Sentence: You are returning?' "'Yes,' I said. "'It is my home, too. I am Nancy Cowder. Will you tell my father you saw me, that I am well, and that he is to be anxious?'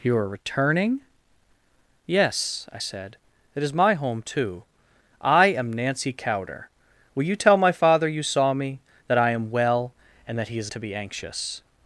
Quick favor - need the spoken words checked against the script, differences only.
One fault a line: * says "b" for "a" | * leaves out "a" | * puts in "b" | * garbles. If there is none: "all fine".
all fine